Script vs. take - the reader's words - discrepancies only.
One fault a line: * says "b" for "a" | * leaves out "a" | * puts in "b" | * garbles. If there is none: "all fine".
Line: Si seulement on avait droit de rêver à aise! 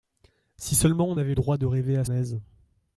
all fine